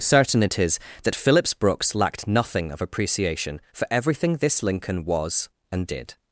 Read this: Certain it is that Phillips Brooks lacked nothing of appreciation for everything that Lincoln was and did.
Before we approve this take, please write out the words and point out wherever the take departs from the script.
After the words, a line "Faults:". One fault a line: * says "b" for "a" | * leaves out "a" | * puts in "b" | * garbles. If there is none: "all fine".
Certain it is that Phillips Brooks lacked nothing of appreciation for everything this Lincoln was and did.
Faults:
* says "this" for "that"